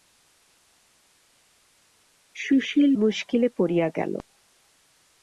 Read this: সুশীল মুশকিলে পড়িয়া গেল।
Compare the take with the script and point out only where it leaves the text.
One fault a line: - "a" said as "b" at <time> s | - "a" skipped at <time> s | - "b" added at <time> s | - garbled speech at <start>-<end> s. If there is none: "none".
none